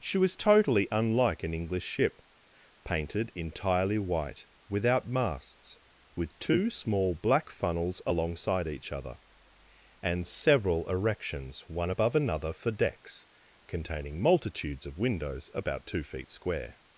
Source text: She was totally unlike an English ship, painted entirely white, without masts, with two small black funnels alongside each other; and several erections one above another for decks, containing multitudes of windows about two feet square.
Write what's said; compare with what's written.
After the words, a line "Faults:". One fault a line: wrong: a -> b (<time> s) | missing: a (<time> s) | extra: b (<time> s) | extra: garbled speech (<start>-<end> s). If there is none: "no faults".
She was totally unlike an English ship, painted entirely white, without masts, with two small black funnels alongside each other; and several erections one above another for decks, containing multitudes of windows about two feet square.
Faults:
no faults